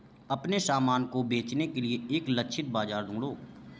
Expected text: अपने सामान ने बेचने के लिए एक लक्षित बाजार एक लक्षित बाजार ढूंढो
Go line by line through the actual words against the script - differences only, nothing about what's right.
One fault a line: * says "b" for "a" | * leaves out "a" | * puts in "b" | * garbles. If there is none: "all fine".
* says "को" for "ने"
* leaves out "एक लक्षित बाजार"